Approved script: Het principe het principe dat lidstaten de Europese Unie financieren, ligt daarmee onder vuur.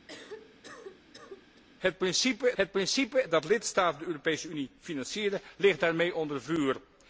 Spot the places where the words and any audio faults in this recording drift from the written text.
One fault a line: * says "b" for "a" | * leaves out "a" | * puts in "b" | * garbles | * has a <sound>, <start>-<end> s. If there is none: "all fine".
* has a cough, 0.1-1.6 s